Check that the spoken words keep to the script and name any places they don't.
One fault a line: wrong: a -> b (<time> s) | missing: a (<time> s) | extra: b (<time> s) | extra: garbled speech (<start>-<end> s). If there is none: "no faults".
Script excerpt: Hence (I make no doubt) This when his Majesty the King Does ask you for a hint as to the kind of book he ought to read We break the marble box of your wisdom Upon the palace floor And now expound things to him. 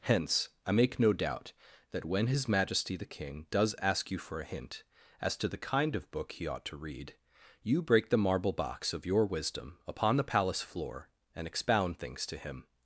wrong: This -> That (1.9 s)
wrong: We -> You (7.6 s)
missing: now (11.4 s)